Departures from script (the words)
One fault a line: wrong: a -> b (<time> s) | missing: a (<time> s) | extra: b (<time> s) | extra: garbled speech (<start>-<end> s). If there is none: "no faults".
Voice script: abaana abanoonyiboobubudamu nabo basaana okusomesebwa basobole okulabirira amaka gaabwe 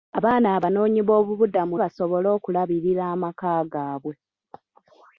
missing: nabo basaana okusomesebwa (1.8 s)